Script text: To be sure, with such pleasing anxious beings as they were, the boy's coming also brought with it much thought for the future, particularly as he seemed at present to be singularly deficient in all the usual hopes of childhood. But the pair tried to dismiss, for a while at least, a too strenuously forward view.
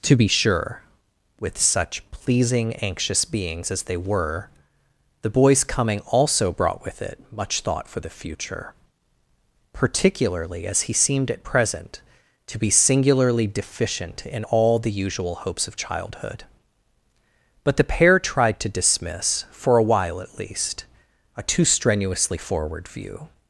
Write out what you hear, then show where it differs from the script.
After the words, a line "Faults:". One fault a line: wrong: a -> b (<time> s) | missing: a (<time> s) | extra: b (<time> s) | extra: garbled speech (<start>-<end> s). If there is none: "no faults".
To be sure, with such pleasing anxious beings as they were, the boy's coming also brought with it much thought for the future, particularly as he seemed at present to be singularly deficient in all the usual hopes of childhood. But the pair tried to dismiss, for a while at least, a too strenuously forward view.
Faults:
no faults